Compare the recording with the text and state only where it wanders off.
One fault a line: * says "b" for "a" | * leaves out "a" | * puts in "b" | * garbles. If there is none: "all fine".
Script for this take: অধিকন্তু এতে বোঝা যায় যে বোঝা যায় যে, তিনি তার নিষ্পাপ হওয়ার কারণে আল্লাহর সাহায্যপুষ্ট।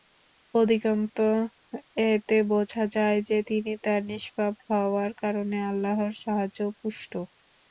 * leaves out "বোঝা যায় যে"